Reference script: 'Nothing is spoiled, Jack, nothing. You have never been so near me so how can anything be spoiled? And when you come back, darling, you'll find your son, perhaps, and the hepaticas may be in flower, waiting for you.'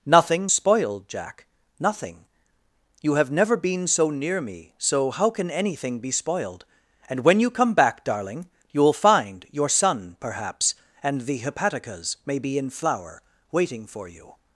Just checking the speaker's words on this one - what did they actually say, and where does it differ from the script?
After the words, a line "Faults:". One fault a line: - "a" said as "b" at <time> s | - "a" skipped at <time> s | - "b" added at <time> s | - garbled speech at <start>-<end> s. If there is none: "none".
'Nothing spoiled, Jack, nothing. You have never been so near me so how can anything be spoiled? And when you come back, darling, you'll find your son, perhaps, and the hepaticas may be in flower, waiting for you.'
Faults:
- "is" skipped at 0.5 s